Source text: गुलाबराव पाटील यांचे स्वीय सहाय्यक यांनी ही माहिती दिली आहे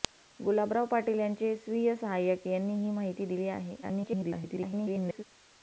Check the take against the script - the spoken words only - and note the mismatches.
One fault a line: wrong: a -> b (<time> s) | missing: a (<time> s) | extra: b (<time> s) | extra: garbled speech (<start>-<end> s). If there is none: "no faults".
extra: garbled speech (3.8-5.2 s)